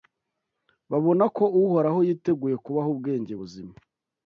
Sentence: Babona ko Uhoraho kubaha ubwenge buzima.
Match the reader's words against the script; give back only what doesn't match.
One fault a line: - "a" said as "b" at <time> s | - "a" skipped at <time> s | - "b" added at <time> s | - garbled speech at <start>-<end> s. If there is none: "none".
- "yiteguye" added at 2.1 s